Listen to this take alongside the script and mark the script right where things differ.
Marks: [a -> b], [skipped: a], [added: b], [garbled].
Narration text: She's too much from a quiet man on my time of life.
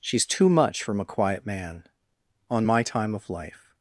She's too much from a quiet man on my time of life.